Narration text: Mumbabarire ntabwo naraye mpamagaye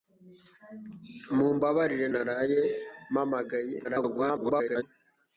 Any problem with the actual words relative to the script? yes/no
yes